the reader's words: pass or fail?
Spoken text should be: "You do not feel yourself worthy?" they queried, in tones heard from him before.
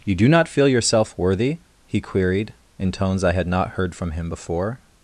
fail